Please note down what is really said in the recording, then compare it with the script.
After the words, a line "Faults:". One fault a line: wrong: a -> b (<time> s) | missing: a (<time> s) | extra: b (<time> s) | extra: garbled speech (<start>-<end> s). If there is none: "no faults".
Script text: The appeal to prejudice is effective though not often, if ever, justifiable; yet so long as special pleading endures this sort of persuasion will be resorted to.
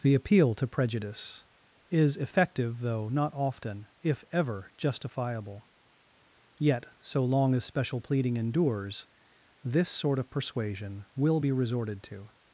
The appeal to prejudice is effective though not often, if ever, justifiable; yet so long as special pleading endures this sort of persuasion will be resorted to.
Faults:
no faults